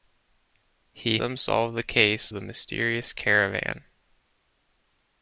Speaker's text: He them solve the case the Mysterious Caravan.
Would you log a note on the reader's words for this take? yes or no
no